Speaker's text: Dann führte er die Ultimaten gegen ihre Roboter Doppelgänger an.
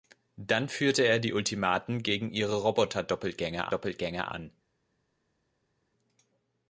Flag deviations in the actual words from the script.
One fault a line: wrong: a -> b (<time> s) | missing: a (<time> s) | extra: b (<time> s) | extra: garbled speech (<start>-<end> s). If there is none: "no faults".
extra: Doppelgänger (3.6 s)